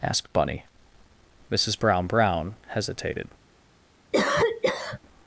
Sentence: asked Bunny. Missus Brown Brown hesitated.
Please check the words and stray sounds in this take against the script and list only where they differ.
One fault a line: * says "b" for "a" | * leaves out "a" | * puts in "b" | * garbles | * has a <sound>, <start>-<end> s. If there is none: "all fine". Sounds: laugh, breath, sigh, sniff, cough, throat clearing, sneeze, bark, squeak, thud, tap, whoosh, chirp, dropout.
* has a cough, 4.1-5.0 s